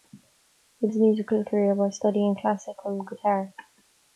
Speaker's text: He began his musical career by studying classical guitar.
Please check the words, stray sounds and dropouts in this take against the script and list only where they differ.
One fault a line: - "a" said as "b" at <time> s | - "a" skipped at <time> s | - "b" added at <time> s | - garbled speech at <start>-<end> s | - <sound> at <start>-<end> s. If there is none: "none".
- "began" skipped at 0.9 s